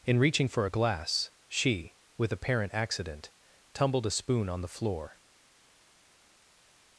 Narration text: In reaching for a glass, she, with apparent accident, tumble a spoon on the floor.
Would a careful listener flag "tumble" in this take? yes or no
yes